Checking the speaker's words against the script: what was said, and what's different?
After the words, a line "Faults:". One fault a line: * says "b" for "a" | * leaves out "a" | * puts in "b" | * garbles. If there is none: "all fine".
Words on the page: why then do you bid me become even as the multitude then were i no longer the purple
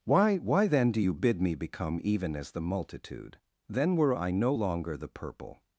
why why then do you bid me become even as the multitude then were i no longer the purple
Faults:
* puts in "why"